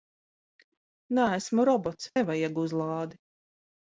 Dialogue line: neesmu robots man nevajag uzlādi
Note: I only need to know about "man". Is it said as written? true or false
false